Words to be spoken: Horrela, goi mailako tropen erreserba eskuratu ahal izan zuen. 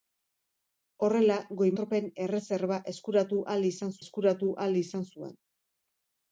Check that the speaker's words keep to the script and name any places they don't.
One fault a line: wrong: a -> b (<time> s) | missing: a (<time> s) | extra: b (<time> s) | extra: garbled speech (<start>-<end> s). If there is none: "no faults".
missing: mailako (1.7 s)
extra: eskuratu ahal izan (4.0 s)